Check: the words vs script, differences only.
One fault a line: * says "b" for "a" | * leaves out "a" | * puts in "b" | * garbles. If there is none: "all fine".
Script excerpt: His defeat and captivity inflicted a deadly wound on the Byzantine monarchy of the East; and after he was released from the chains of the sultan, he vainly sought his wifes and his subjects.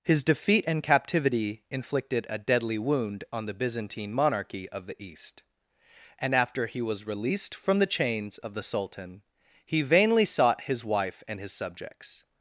* says "wife" for "wifes"